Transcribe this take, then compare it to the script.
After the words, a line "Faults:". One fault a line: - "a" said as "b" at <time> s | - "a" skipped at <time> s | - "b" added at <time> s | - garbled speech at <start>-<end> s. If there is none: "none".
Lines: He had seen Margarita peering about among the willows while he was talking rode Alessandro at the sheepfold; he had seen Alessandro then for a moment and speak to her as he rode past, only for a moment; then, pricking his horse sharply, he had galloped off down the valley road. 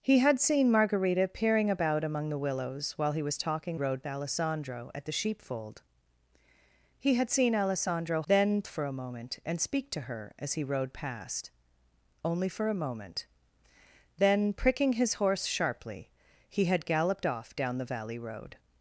He had seen Margarita peering about among the willows while he was talking rode Alessandro at the sheepfold; he had seen Alessandro then for a moment and speak to her as he rode past, only for a moment; then, pricking his horse sharply, he had galloped off down the valley road.
Faults:
none